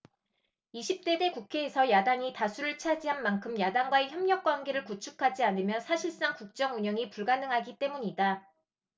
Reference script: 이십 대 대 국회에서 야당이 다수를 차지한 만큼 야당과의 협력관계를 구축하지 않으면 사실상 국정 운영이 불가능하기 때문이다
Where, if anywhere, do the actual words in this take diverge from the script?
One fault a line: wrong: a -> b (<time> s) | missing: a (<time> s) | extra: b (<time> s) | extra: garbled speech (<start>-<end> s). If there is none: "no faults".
no faults